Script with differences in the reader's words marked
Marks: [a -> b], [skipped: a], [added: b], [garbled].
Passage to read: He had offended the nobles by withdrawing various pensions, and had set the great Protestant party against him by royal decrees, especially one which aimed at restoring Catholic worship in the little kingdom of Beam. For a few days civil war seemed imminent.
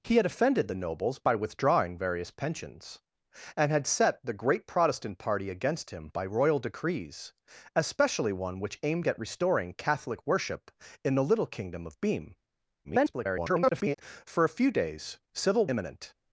He had offended the nobles by withdrawing various pensions, and had set the great Protestant party against him by royal decrees, especially one which aimed at restoring Catholic worship in the little kingdom of Beam. [garbled] For a few days civil [skipped: war seemed] imminent.